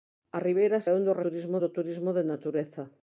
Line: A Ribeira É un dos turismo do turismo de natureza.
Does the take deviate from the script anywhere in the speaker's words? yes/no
no